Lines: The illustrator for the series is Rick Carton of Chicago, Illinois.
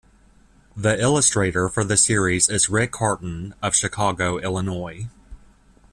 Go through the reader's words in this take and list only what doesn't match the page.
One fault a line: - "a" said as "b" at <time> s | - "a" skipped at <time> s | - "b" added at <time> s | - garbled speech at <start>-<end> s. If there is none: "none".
none